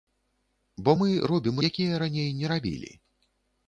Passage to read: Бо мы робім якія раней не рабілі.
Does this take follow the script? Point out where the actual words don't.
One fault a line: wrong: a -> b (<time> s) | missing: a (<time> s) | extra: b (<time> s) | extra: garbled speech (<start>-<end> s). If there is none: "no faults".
no faults